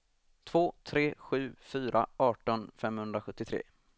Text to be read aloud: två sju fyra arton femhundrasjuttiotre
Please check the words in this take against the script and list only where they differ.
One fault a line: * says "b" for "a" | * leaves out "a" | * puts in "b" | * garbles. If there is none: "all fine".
* puts in "tre"